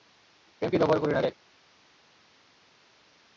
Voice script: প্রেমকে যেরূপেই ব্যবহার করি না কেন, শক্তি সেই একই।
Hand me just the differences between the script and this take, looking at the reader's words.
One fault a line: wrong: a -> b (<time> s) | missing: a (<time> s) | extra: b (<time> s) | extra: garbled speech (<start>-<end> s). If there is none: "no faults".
missing: যেরূপেই (0.8 s)
missing: কেন শক্তি সেই (1.2 s)